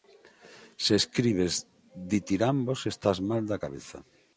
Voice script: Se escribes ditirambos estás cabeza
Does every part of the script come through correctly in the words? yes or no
no